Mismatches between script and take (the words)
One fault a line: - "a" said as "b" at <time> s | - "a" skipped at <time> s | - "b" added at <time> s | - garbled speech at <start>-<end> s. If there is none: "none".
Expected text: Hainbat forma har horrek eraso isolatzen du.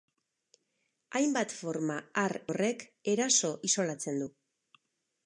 none